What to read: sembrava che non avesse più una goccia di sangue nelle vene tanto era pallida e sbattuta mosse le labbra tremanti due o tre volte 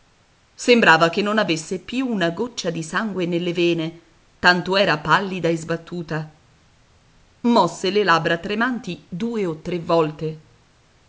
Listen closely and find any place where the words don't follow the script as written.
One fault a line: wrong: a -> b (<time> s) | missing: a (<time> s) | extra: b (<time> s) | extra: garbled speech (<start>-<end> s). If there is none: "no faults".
no faults